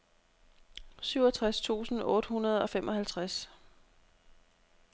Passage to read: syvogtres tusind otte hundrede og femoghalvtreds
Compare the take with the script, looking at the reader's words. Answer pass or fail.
pass